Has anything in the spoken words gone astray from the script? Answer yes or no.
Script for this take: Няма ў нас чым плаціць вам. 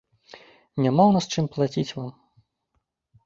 no